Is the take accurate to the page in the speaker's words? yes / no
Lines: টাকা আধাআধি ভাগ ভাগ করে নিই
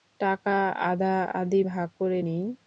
no